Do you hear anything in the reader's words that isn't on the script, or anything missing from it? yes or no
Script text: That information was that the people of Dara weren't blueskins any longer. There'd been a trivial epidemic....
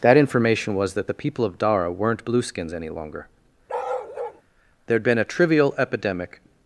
no